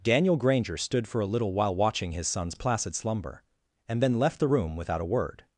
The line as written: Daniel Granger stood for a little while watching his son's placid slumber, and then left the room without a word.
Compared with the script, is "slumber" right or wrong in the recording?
right